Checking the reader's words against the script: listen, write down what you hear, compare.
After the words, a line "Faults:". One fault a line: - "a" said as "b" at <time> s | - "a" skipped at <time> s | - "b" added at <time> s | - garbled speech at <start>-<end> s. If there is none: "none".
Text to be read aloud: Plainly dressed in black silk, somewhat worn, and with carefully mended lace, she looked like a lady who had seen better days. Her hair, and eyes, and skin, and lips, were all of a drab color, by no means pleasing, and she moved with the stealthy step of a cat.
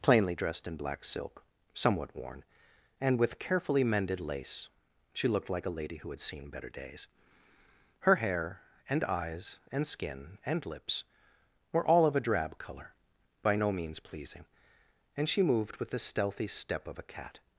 Plainly dressed in black silk, somewhat worn, and with carefully mended lace, she looked like a lady who had seen better days. Her hair, and eyes, and skin, and lips, were all of a drab color, by no means pleasing, and she moved with the stealthy step of a cat.
Faults:
none